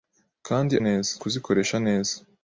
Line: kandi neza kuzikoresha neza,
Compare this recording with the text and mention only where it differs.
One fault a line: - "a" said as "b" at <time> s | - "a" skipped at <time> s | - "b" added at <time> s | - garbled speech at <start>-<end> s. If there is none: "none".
none